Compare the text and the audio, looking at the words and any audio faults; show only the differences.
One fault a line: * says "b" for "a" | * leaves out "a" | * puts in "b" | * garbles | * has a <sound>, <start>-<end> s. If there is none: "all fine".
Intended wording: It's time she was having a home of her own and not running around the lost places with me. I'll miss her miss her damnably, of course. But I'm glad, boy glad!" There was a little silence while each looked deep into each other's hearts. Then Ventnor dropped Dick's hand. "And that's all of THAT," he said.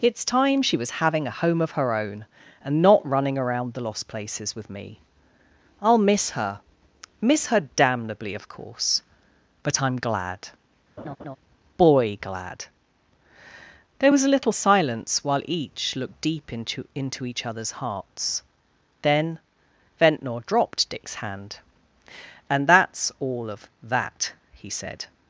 * has a laugh, 11.0-11.4 s
* puts in "into"